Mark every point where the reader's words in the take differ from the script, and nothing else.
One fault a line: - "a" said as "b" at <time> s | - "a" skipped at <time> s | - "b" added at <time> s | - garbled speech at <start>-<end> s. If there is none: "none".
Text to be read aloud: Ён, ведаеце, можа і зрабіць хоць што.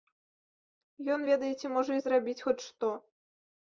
none